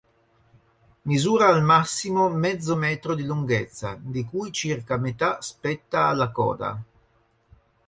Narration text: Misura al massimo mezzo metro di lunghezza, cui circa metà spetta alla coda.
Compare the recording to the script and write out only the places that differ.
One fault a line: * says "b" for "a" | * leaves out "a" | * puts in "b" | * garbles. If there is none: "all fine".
* puts in "di"